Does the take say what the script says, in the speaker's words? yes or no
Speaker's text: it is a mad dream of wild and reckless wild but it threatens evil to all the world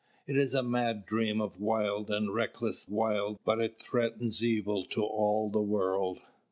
yes